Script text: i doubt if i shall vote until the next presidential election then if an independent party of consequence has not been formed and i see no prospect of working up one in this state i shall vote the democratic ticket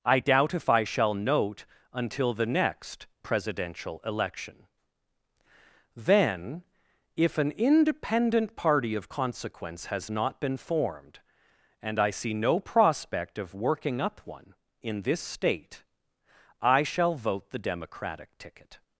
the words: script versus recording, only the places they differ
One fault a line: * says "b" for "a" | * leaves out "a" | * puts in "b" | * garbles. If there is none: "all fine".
* says "note" for "vote"